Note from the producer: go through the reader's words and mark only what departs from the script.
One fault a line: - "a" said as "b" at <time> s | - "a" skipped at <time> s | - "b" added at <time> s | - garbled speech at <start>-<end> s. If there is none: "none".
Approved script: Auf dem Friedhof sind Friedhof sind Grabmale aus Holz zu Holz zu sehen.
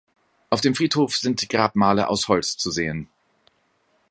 - "Friedhof sind" skipped at 1.5 s
- "Holz zu" skipped at 2.7 s